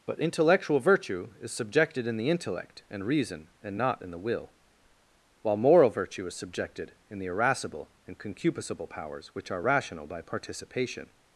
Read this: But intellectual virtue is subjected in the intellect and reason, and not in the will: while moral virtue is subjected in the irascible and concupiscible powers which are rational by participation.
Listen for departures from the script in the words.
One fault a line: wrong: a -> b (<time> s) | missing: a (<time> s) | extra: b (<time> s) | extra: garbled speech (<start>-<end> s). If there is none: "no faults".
no faults